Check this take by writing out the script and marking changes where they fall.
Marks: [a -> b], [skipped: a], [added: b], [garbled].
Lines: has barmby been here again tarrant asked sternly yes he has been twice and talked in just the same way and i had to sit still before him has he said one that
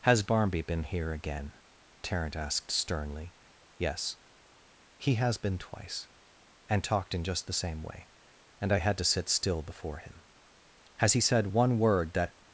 has barmby been here again tarrant asked sternly yes he has been twice and talked in just the same way and i had to sit still before him has he said one [added: word] that